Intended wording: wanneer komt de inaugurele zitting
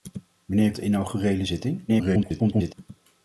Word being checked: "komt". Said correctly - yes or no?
no